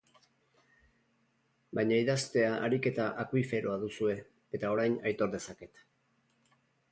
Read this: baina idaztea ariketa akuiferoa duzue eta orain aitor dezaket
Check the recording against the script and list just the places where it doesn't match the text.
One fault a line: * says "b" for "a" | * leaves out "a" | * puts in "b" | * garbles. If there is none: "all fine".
all fine